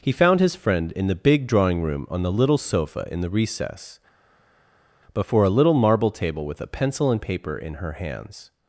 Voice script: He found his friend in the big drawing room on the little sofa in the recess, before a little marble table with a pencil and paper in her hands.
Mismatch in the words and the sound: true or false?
false